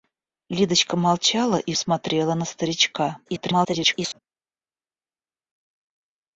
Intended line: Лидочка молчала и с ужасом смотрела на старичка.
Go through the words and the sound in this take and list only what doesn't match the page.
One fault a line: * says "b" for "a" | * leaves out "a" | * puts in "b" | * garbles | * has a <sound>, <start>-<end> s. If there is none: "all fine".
* leaves out "с ужасом"
* garbles